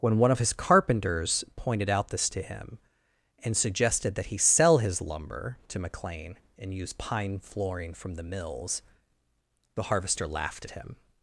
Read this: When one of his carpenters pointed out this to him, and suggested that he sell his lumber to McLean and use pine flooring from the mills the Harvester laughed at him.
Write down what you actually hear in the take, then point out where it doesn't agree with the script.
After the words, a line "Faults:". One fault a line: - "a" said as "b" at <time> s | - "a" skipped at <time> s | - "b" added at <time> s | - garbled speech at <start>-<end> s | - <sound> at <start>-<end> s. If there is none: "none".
When one of his carpenters pointed out this to him, and suggested that he sell his lumber to McLean and use pine flooring from the mills the Harvester laughed at him.
Faults:
none